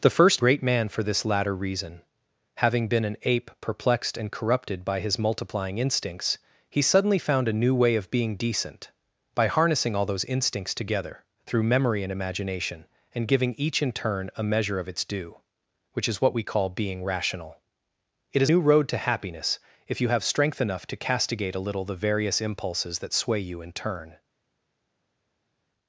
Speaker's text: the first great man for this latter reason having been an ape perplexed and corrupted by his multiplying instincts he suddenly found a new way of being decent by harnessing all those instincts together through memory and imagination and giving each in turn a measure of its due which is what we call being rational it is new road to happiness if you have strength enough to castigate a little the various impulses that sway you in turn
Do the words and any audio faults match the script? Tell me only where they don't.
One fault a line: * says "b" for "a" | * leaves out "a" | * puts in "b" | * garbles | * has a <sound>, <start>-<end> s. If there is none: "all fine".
all fine